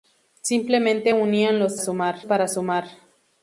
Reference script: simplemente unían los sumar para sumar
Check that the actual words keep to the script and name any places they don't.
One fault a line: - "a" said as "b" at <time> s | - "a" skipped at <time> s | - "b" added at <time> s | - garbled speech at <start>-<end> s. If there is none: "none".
none